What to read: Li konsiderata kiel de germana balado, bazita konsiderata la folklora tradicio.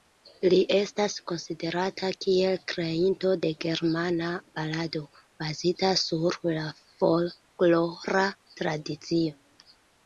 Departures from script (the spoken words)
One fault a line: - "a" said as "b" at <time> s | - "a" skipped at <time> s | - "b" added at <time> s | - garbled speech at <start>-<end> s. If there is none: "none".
- "estas" added at 0.8 s
- "kreinto" added at 2.7 s
- "konsiderata" said as "sur" at 6.1 s